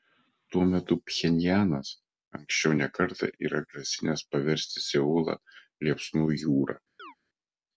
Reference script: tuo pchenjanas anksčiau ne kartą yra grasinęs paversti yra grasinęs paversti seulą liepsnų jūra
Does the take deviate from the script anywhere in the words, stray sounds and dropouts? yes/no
yes